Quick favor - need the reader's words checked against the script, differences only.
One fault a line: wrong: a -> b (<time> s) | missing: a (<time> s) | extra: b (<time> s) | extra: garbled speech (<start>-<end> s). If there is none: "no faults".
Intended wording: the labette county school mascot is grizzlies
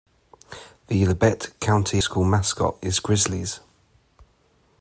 no faults